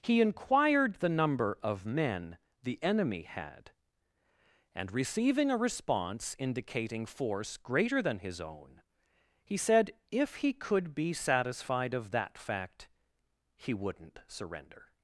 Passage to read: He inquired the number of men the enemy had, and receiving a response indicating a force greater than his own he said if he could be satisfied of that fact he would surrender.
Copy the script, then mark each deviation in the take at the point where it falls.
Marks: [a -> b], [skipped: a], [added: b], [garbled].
He inquired the number of men the enemy had, and receiving a response indicating [skipped: a] force greater than his own he said if he could be satisfied of that fact he [would -> wouldn't] surrender.